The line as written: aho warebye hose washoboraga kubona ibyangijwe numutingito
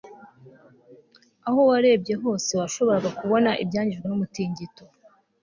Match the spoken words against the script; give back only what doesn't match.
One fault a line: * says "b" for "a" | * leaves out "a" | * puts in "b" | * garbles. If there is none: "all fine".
all fine